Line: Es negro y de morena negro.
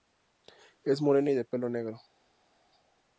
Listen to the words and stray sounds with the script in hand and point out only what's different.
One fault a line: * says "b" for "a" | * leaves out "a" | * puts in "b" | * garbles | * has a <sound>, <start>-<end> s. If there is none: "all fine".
* says "morena" for "negro"
* says "pelo" for "morena"